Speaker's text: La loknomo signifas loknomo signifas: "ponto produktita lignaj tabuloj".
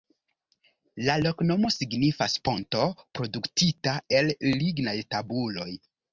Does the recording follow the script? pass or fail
fail